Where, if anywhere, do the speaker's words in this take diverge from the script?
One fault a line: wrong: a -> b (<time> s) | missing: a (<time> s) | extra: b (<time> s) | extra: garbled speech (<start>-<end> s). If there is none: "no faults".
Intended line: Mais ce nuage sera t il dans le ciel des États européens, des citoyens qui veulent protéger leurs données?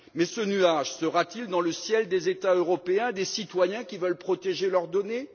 no faults